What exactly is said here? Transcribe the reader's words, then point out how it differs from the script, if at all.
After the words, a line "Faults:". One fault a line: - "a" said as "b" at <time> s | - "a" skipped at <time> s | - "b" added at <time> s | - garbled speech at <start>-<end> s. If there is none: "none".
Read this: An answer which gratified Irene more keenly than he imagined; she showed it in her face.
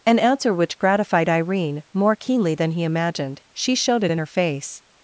An answer which gratified Irene more keenly than he imagined; she showed it in her face.
Faults:
none